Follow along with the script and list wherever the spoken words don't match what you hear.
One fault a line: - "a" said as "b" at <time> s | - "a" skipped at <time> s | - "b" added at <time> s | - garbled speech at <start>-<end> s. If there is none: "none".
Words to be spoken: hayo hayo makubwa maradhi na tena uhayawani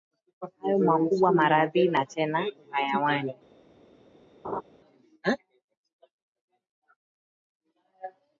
- "hayo" skipped at 0.8 s